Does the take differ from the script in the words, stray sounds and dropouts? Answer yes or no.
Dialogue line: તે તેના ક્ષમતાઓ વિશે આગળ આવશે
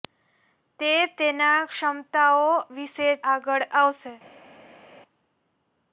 no